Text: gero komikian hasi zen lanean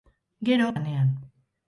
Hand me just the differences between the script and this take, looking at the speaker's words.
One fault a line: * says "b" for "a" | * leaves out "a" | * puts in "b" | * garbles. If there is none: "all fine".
* leaves out "komikian hasi zen"